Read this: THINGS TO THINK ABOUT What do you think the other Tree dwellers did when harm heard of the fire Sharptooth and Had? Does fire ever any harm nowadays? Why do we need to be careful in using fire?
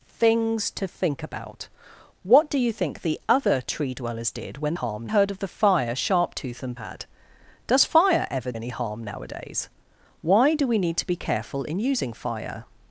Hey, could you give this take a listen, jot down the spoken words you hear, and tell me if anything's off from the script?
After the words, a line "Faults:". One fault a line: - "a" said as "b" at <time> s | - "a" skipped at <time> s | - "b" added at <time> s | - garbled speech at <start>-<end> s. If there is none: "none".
THINGS TO THINK ABOUT What do you think the other Tree dwellers did when harm heard of the fire Sharptooth and Had? Does fire ever any harm nowadays? Why do we need to be careful in using fire?
Faults:
none